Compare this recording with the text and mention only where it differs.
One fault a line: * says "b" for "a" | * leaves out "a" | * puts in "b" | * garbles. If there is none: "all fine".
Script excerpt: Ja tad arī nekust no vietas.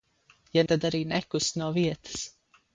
all fine